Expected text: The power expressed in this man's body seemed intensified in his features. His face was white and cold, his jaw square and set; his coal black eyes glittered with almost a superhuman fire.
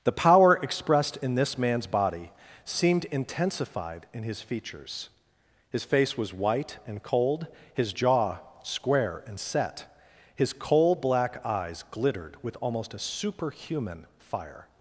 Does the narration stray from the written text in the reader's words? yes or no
no